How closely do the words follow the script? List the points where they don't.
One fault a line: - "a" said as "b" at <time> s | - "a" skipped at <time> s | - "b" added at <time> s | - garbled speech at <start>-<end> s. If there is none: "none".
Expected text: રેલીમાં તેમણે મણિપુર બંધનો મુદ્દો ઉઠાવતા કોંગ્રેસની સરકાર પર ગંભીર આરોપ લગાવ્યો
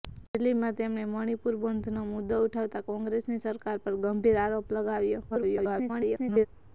- garbled speech at 5.3-6.5 s